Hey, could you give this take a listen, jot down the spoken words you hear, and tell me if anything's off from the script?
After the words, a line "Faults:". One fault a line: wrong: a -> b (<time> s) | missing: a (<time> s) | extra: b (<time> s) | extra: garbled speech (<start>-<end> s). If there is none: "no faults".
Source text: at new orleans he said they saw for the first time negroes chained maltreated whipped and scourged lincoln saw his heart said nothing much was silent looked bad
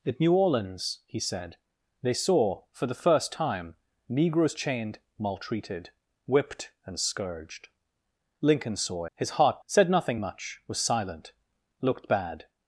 at new orleans he said they saw for the first time negroes chained maltreated whipped and scourged lincoln saw his heart said nothing much was silent looked bad
Faults:
no faults